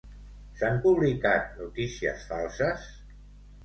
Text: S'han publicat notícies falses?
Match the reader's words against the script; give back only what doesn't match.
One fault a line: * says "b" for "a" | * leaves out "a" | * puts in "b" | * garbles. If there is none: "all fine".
all fine